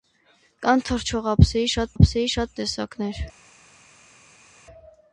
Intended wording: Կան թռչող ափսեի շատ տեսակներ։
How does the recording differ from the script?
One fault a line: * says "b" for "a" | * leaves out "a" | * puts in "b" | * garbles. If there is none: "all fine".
* puts in "ափսեի շատ"